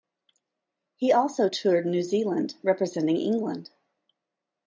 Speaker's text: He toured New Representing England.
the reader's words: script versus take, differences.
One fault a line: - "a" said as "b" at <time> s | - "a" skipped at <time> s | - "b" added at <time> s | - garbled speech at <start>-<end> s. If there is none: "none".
- "also" added at 1.1 s
- "Zealand" added at 2.0 s